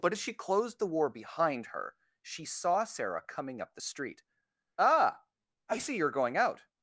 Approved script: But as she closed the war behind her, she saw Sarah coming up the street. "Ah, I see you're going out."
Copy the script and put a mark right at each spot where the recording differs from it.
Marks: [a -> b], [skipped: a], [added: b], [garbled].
But as she closed the war behind her, she saw Sarah coming up the street. "Ah, I see you're going out."